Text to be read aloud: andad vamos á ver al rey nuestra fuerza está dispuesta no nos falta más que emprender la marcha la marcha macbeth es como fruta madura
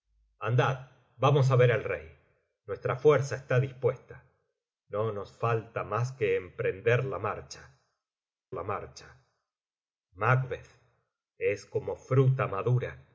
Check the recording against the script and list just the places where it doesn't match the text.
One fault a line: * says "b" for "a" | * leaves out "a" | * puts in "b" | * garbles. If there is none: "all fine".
all fine